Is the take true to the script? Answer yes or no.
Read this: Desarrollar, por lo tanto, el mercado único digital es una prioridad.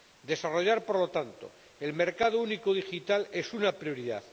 yes